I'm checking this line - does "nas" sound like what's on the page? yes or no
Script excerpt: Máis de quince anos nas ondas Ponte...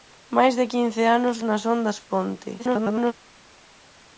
yes